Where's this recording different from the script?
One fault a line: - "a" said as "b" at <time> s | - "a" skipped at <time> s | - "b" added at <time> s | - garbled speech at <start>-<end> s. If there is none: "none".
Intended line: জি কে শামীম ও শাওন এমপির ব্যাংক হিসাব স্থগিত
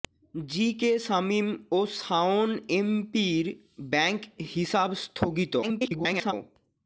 - garbled speech at 5.6-6.3 s